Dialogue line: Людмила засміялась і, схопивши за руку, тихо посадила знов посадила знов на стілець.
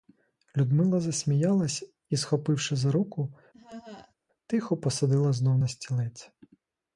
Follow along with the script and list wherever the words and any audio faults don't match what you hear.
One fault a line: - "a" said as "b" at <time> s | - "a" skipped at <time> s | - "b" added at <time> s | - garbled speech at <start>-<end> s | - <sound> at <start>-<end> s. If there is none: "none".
- laugh at 3.5-4.1 s
- "посадила знов" skipped at 5.6 s